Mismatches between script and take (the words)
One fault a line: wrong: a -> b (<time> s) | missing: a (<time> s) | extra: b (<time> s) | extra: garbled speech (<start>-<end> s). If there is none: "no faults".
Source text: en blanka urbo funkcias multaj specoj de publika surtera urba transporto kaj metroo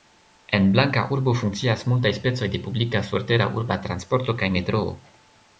no faults